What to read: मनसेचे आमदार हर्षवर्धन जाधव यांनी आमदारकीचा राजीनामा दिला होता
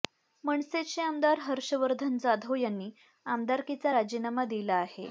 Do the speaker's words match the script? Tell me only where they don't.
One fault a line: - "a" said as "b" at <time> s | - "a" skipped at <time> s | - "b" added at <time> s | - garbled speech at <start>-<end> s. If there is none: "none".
- "होता" said as "आहे" at 4.8 s